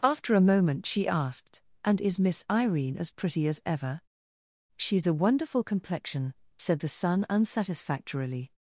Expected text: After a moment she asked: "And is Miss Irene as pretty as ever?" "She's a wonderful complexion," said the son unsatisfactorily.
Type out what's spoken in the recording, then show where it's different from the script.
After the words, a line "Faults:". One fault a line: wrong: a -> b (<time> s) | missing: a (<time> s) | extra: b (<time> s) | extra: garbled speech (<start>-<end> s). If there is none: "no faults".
After a moment she asked: "And is Miss Irene as pretty as ever?" "She's a wonderful complexion," said the son unsatisfactorily.
Faults:
no faults